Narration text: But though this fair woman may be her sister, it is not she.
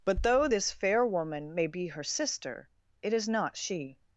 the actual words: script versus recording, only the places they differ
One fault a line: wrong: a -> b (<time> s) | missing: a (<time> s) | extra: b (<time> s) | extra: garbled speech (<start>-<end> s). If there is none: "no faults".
no faults